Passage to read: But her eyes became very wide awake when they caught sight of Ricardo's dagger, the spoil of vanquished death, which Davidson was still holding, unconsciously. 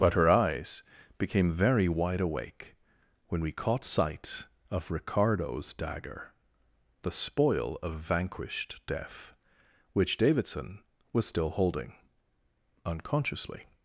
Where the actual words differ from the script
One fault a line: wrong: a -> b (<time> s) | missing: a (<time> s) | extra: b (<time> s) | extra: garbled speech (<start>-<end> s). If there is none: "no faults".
wrong: they -> we (3.4 s)